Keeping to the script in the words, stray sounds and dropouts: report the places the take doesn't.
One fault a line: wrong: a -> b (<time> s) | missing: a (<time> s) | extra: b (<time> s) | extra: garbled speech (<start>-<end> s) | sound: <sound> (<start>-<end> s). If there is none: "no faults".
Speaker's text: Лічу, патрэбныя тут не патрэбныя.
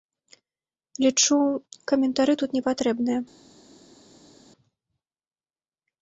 wrong: патрэбныя -> каментары (1.9 s)